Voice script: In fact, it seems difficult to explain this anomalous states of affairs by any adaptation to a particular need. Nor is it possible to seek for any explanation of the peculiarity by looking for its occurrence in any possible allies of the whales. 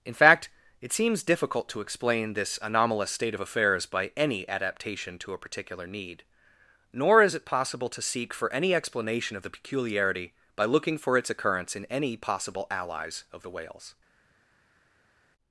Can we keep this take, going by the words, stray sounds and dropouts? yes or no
no